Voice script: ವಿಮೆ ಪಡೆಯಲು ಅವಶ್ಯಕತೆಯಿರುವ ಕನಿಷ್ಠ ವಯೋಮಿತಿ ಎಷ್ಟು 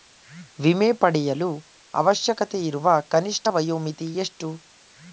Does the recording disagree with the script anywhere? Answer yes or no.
no